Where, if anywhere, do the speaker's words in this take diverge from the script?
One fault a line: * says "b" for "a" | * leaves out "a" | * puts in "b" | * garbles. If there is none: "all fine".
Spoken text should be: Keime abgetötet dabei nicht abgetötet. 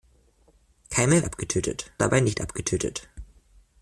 all fine